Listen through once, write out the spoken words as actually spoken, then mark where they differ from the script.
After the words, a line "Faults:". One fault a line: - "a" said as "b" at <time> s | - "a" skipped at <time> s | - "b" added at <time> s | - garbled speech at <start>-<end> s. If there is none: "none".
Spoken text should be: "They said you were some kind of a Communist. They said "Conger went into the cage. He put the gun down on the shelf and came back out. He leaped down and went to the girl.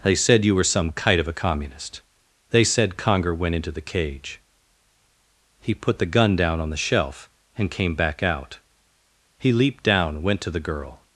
"They said you were some kite of a Communist. They said "Conger went into the cage. He put the gun down on the shelf and came back out. He leaped down went to the girl.
Faults:
- "kind" said as "kite" at 0.9 s
- "and" skipped at 10.2 s